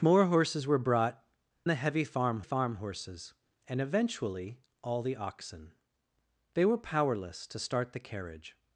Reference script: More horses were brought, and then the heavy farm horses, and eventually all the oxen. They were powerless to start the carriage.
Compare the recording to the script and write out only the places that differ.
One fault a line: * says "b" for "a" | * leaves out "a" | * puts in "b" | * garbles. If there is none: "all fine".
* leaves out "and then"
* puts in "farm"